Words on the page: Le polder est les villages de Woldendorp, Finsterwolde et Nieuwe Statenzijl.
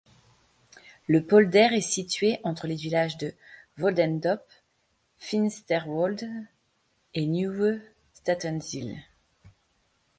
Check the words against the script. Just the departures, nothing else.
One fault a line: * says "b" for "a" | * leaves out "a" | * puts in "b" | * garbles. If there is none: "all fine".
* puts in "situé entre"